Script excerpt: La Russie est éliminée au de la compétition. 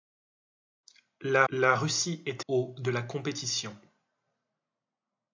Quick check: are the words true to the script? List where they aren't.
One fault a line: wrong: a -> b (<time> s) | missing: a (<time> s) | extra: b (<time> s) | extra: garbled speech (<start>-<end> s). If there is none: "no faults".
extra: la (1.5 s)
missing: éliminée (2.4 s)